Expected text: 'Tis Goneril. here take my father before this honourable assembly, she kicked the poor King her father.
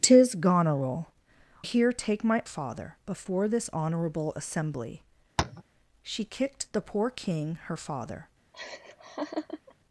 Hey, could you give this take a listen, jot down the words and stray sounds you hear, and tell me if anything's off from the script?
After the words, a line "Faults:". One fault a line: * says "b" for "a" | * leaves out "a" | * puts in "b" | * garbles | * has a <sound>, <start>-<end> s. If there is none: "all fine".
'Tis Goneril. here take my father before this honourable assembly, she kicked the poor King her father.
Faults:
* has a tap, 5.4-5.6 s
* has a laugh, 8.5-9.7 s